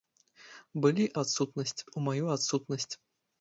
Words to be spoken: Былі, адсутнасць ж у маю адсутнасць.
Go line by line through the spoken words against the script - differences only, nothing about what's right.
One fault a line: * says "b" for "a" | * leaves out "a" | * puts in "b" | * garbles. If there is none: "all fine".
all fine